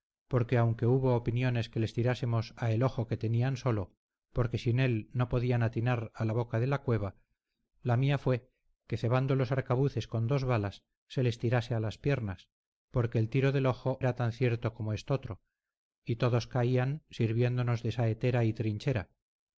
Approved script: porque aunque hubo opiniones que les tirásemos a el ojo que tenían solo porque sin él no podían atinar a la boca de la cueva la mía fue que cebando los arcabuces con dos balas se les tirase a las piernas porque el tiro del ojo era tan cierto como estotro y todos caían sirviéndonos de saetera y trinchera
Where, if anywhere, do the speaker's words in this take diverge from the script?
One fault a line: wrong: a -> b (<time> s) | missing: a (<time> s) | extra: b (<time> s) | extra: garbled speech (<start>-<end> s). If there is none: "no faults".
no faults